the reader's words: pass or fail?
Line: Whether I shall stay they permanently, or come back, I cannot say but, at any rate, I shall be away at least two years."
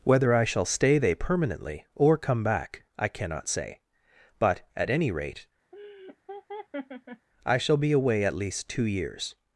pass